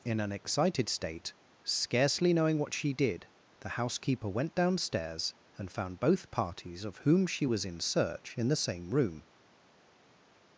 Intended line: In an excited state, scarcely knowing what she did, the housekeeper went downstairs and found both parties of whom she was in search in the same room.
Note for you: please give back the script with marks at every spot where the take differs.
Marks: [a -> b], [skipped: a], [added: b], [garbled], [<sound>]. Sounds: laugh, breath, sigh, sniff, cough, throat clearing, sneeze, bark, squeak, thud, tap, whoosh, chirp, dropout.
In an excited state, scarcely knowing what she did, the housekeeper went downstairs and found both parties of whom she was in search in the same room.